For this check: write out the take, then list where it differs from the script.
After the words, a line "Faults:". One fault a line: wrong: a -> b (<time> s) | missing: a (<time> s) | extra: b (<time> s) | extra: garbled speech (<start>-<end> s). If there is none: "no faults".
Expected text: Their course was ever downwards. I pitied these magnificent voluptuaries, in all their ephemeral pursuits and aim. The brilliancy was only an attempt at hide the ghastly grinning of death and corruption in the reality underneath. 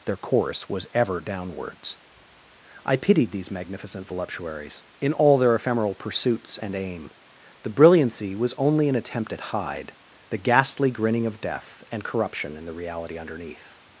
Their course was ever downwards. I pitied these magnificent voluptuaries, in all their ephemeral pursuits and aim. The brilliancy was only an attempt at hide the ghastly grinning of death and corruption in the reality underneath.
Faults:
no faults